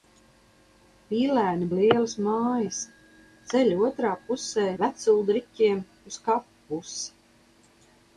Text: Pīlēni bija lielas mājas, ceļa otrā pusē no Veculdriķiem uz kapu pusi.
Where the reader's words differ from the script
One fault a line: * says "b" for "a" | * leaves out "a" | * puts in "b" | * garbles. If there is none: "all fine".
* leaves out "bija"
* leaves out "no"